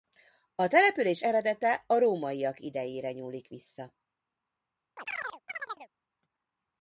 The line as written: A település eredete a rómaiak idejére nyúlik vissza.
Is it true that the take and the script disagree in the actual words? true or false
false